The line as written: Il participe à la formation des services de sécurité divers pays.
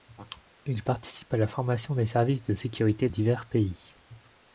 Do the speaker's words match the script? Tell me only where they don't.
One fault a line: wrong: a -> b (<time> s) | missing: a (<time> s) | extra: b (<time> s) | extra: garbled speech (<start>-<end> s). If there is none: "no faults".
no faults